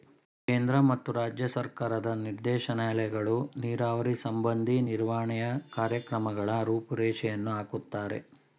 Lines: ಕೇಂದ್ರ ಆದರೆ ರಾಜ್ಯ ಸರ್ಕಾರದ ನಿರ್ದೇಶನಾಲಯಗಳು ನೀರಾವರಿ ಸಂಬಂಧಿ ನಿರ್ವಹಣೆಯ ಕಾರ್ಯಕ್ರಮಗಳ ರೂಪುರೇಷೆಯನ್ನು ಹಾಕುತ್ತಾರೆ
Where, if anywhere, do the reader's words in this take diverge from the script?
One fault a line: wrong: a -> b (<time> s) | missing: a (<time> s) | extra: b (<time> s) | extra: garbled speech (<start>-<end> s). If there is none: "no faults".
wrong: ಆದರೆ -> ಮತ್ತು (0.8 s)